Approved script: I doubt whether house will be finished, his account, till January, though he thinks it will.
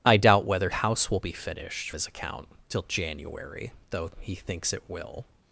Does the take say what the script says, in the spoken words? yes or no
yes